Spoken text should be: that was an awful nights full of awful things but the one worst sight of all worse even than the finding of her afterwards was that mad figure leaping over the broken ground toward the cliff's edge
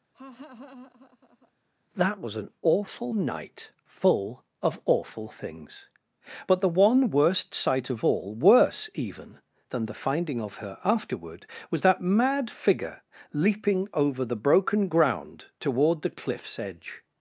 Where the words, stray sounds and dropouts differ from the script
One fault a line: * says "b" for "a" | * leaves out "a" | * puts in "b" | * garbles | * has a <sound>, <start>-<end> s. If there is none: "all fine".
* has a laugh, 0.1-1.5 s
* says "night" for "nights"
* says "afterward" for "afterwards"